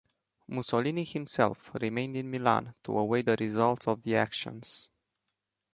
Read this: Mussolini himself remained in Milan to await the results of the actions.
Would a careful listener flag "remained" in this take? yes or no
no